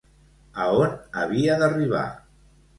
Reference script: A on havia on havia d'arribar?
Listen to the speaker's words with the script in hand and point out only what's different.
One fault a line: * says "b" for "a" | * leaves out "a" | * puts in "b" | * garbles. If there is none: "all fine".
* leaves out "on havia"